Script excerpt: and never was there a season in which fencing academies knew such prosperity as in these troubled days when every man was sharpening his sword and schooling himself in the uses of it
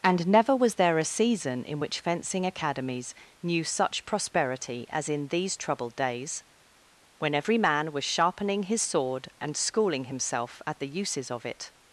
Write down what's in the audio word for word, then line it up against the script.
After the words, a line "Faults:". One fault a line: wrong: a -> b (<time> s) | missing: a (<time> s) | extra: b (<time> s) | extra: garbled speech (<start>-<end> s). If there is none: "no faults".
and never was there a season in which fencing academies knew such prosperity as in these troubled days when every man was sharpening his sword and schooling himself at the uses of it
Faults:
wrong: in -> at (10.7 s)